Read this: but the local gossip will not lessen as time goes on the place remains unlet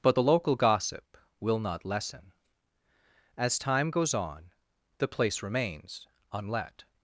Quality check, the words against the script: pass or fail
pass